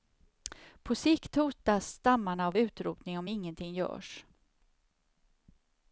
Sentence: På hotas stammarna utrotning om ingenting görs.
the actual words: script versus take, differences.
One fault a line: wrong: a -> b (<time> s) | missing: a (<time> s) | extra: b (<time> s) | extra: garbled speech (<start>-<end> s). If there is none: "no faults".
extra: sikt (0.9 s)
extra: av (2.5 s)